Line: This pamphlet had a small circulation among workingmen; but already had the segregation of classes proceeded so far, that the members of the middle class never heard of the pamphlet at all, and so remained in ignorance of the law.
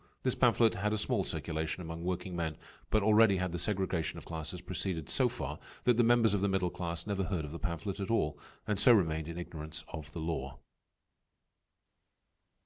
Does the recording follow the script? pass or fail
pass